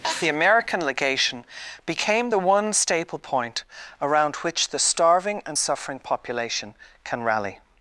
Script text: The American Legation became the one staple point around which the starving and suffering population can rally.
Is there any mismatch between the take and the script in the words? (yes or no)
no